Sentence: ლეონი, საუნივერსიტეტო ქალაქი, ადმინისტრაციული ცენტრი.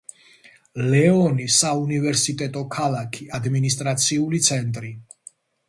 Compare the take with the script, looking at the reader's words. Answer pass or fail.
pass